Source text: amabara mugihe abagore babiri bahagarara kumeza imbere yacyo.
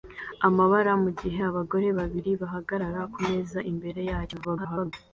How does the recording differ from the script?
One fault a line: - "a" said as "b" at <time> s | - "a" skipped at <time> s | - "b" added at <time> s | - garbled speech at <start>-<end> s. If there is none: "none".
- garbled speech at 4.4-4.9 s